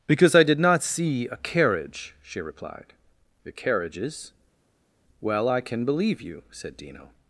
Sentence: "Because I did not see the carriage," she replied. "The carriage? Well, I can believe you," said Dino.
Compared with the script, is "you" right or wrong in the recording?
right